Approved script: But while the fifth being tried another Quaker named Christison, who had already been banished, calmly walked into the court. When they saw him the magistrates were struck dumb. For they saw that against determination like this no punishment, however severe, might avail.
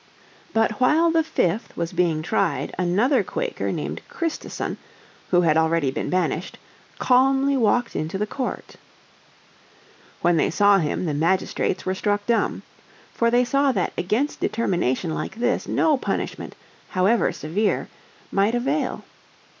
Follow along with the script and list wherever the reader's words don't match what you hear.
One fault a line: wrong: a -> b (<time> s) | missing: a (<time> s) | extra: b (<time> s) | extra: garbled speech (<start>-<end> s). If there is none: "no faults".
extra: was (1.8 s)